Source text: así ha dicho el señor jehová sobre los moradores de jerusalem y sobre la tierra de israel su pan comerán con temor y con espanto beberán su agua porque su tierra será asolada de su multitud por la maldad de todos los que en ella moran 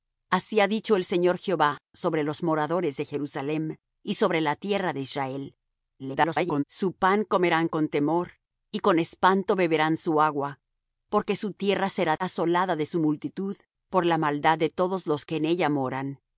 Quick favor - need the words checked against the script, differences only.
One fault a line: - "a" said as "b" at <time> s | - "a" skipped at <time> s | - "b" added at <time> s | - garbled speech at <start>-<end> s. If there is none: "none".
- garbled speech at 6.0-6.6 s